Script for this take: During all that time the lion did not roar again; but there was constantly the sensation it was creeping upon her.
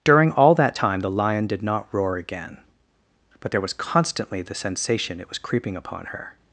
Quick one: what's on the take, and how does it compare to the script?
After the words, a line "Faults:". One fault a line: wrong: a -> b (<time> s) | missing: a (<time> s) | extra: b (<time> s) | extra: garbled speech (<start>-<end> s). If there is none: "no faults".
During all that time the lion did not roar again; but there was constantly the sensation it was creeping upon her.
Faults:
no faults